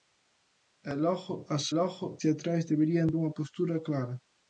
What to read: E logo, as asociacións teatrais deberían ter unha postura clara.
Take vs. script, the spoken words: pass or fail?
fail